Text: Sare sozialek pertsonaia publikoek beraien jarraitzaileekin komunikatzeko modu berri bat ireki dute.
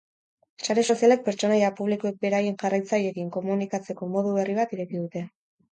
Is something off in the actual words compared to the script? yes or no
no